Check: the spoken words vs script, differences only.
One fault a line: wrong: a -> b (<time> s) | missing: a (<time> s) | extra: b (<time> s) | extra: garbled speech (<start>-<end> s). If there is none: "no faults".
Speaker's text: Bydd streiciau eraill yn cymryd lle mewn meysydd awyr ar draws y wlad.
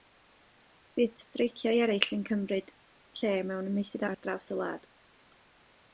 missing: awyr (4.1 s)